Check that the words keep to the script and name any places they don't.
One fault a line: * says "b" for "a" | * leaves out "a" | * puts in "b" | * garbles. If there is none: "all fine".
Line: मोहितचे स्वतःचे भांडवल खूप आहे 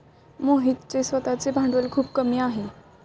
* puts in "कमी"